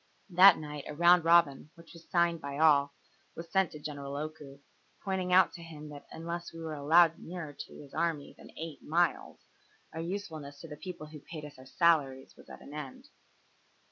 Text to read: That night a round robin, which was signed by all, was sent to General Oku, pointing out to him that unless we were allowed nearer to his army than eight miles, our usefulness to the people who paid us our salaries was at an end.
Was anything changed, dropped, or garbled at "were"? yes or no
no